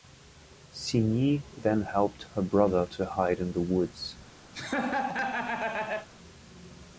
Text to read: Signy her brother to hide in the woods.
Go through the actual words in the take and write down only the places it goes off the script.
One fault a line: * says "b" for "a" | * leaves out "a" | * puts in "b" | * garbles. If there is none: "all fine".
* puts in "then helped"